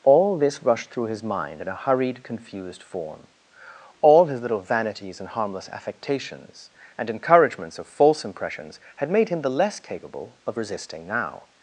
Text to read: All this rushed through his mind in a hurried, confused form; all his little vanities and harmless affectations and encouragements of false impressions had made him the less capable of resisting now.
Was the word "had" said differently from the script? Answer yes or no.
no